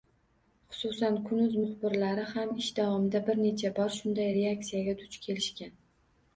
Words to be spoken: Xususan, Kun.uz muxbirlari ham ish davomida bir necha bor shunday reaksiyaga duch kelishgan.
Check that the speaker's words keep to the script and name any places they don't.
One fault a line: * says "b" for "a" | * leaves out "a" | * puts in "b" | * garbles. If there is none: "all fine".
all fine